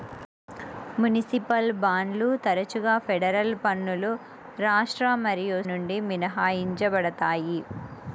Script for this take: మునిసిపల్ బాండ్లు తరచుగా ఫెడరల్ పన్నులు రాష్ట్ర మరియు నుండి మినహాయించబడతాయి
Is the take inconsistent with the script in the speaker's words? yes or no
no